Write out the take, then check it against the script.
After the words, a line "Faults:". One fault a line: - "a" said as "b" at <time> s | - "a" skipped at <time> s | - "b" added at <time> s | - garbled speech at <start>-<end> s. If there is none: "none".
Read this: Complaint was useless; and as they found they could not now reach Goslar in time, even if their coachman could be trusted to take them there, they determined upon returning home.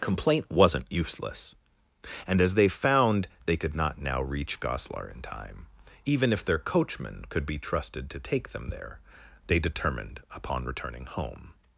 Complaint wasn't useless; and as they found they could not now reach Goslar in time, even if their coachman could be trusted to take them there, they determined upon returning home.
Faults:
- "was" said as "wasn't" at 0.5 s